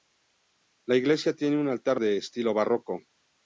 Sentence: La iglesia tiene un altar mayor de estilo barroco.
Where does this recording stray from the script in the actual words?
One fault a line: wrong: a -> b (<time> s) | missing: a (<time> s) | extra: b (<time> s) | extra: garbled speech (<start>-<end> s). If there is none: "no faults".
missing: mayor (2.0 s)